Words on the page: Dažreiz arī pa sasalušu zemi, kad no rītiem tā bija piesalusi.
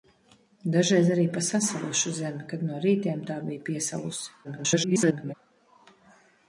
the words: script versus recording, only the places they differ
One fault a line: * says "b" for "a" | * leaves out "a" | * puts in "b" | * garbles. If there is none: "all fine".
* garbles